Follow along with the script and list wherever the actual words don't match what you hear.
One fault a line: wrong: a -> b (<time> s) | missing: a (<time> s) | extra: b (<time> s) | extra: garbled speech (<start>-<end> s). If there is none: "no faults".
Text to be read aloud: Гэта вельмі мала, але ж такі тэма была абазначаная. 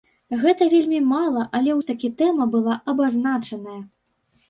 no faults